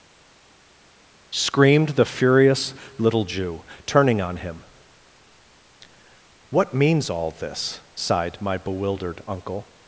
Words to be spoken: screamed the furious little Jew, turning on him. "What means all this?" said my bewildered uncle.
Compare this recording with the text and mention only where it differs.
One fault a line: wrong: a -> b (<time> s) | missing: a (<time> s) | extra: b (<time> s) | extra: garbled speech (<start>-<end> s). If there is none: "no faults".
wrong: said -> sighed (8.0 s)